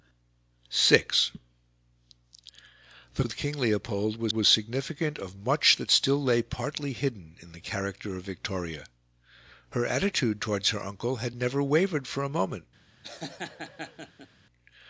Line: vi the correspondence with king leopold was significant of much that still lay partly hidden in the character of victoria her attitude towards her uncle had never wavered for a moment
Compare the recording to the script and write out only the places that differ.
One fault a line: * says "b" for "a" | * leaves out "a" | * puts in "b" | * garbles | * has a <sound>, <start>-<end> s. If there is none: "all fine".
* leaves out "correspondence"
* puts in "was"
* has a laugh, 13.0-14.3 s